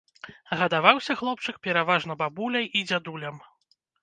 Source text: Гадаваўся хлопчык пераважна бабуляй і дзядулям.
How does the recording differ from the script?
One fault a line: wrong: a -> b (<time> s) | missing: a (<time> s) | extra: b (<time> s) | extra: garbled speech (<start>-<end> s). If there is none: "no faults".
no faults